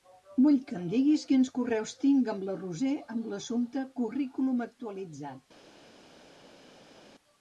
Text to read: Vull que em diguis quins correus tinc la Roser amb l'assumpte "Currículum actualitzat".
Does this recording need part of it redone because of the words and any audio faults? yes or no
yes